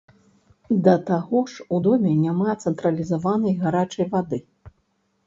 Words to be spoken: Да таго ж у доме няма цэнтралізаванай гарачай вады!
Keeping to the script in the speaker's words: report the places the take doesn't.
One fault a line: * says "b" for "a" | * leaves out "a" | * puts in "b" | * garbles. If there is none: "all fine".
all fine